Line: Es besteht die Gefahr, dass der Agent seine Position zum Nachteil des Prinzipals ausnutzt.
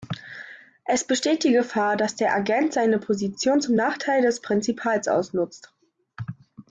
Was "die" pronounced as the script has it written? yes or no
yes